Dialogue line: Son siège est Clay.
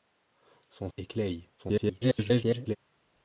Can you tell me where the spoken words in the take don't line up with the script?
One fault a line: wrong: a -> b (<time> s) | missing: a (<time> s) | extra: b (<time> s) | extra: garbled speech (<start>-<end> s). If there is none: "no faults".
missing: siège (0.9 s)
extra: garbled speech (1.6-2.8 s)